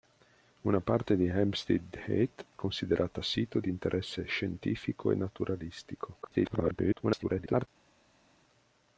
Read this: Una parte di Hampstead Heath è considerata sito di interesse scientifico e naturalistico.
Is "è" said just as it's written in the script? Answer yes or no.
no